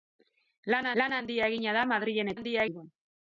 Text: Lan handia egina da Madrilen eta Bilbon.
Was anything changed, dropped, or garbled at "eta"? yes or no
yes